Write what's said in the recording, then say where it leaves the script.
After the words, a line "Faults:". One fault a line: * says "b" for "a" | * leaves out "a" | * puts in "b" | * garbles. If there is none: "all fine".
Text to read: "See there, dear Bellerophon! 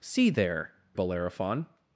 "See there, Bellerophon!
Faults:
* leaves out "dear"